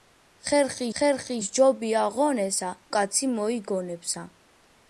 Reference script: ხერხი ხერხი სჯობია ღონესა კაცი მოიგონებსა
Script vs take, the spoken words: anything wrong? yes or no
no